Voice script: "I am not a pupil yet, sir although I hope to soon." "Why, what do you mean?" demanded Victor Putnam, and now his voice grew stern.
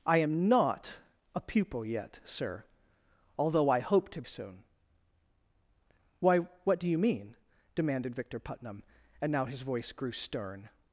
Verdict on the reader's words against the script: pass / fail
pass